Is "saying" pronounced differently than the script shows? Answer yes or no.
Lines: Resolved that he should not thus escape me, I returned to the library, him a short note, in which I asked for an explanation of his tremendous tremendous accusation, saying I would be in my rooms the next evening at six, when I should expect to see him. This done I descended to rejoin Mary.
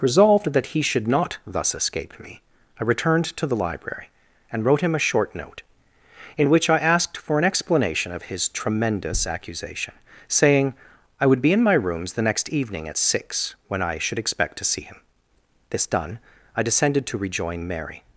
no